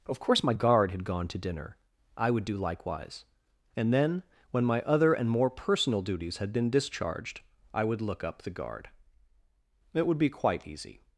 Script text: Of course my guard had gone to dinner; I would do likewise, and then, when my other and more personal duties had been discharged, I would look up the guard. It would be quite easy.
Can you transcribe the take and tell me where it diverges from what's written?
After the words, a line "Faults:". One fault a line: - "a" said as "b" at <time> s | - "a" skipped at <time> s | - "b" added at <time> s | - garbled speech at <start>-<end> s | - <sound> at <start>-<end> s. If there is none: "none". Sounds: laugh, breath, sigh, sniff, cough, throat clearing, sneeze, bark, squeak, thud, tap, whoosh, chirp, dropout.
Of course my guard had gone to dinner; I would do likewise, and then, when my other and more personal duties had been discharged, I would look up the guard. It would be quite easy.
Faults:
none